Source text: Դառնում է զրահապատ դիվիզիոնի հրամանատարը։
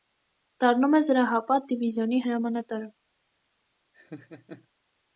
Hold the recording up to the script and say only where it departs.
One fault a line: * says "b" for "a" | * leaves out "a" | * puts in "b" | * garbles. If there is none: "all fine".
all fine